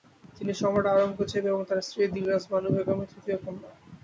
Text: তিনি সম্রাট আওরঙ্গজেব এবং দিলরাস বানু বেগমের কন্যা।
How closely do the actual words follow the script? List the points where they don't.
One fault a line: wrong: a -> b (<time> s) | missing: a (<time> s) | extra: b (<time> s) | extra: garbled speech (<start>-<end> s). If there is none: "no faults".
extra: তার স্ত্রী (1.7 s)
extra: তৃতীয় (3.1 s)